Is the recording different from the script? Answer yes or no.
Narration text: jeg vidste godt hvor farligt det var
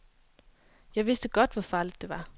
no